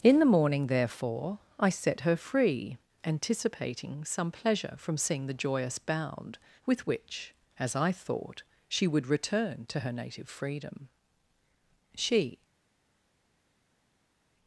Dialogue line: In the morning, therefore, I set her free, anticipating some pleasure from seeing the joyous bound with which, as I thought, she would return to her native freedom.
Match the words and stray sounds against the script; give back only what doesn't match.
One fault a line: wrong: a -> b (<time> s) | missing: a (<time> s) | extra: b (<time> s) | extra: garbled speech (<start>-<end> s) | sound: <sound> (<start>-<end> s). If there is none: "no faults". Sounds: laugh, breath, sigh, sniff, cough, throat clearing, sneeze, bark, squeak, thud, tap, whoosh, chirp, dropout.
extra: She (11.9 s)